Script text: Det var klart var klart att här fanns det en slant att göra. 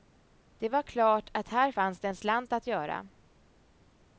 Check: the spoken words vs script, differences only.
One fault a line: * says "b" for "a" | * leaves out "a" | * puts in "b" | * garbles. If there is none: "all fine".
* leaves out "var klart"